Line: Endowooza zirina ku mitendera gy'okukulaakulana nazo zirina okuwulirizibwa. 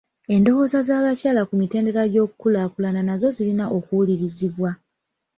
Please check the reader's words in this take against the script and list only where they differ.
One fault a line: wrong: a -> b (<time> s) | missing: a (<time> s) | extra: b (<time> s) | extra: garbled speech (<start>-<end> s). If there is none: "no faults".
wrong: zirina -> z'abakyala (0.9 s)